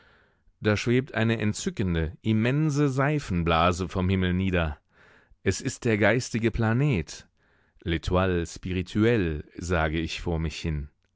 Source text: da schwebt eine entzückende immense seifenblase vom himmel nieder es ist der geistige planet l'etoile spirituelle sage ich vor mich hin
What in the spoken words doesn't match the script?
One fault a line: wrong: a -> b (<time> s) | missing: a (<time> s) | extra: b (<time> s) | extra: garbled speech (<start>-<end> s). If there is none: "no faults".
no faults